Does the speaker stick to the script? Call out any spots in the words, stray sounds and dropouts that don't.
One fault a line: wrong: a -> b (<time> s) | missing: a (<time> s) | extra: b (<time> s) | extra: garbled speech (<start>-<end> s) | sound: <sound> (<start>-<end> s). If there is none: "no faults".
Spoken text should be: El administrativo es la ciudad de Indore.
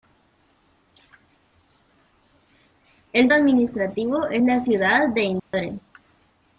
sound: dropout (5.4-5.5 s)